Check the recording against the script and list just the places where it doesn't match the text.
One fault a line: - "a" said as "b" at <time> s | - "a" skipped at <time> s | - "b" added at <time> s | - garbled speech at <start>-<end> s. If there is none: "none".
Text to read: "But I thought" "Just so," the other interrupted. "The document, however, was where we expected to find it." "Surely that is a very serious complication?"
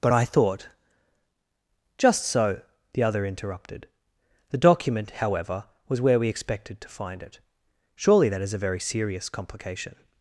none